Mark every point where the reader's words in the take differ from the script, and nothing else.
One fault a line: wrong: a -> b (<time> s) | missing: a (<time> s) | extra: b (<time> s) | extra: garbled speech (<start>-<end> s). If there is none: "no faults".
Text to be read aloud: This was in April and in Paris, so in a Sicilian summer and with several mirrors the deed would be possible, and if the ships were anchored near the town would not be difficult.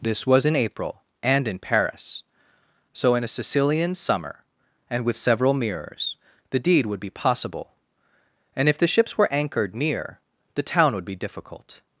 missing: not (11.1 s)